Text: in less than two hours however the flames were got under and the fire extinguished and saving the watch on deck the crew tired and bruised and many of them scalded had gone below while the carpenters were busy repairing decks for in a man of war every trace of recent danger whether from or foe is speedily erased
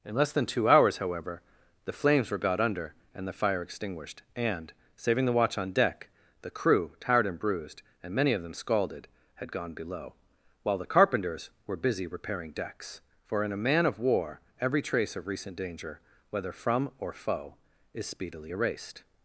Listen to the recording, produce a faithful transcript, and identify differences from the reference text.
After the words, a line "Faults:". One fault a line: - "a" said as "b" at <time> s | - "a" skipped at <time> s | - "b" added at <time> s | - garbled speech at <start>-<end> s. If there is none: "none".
in less than two hours however the flames were got under and the fire extinguished and saving the watch on deck the crew tired and bruised and many of them scalded had gone below while the carpenters were busy repairing decks for in a man of war every trace of recent danger whether from or foe is speedily erased
Faults:
none